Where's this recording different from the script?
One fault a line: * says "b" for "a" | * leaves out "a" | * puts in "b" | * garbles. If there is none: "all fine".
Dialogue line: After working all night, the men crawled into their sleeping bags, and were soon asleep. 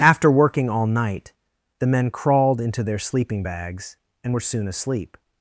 all fine